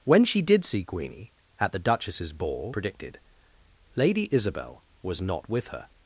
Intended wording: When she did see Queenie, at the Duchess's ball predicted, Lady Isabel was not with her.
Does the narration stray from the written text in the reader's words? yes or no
no